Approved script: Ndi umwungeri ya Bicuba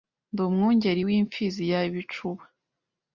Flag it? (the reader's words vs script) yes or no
yes